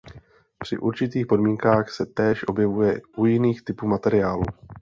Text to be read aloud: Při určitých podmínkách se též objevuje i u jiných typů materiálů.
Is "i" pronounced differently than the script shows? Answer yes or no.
yes